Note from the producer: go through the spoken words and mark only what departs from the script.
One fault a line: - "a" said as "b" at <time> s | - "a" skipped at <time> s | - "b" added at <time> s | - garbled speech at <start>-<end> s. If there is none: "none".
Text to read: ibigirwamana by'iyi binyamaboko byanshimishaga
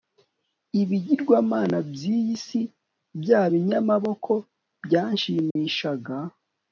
- "si bya" added at 2.5 s